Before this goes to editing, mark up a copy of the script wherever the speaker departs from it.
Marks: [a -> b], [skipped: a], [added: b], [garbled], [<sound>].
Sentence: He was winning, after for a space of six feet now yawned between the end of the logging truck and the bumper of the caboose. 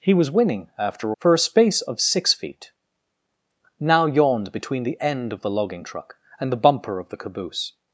He was winning, after for a space of six feet now yawned between the end of the logging truck and the bumper of the caboose.